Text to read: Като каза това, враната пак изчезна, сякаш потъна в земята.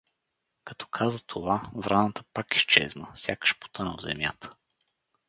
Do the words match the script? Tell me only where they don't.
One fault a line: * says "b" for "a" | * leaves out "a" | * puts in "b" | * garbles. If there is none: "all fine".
all fine